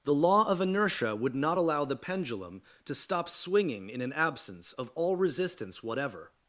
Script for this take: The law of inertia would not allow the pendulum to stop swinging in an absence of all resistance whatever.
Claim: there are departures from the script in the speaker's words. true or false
false